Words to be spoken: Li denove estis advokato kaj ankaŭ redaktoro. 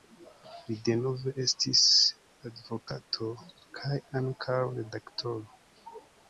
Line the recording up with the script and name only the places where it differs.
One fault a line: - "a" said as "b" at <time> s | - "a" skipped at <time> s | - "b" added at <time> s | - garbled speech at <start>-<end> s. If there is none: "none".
none